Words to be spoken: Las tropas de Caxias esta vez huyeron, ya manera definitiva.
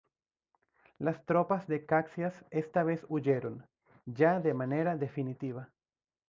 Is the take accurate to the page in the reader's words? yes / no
no